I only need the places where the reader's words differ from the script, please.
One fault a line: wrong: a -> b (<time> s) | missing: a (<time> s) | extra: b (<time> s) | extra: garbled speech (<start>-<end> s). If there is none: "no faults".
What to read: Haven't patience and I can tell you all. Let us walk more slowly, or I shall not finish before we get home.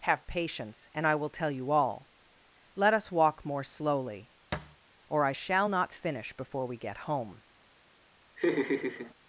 wrong: Haven't -> Have (0.0 s)
wrong: can -> will (1.1 s)